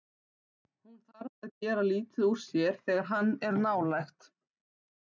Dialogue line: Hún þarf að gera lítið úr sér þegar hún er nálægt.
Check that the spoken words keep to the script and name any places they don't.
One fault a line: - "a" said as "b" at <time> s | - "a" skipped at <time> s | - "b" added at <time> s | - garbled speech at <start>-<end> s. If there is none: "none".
- "hún" said as "hann" at 3.1 s